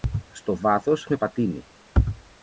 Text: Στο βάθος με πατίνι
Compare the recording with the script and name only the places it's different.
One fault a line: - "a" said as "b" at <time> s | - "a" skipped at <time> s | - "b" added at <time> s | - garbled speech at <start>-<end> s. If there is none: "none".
none